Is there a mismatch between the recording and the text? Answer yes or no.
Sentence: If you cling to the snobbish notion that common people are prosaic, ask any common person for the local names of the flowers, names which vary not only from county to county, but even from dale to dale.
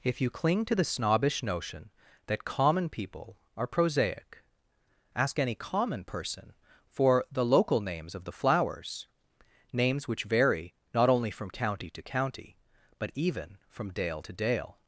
no